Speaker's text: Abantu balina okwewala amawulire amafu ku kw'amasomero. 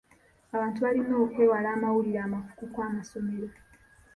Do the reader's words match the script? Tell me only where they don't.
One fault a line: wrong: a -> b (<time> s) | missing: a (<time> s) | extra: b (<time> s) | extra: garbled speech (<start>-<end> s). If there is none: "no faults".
no faults